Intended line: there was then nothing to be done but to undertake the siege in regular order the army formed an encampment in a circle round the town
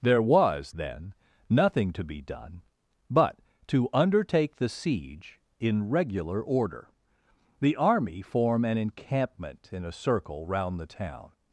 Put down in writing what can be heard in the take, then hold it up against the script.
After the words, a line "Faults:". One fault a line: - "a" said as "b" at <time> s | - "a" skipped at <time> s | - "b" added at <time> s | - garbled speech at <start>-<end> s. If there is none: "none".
there was then nothing to be done but to undertake the siege in regular order the army form an encampment in a circle round the town
Faults:
- "formed" said as "form" at 8.2 s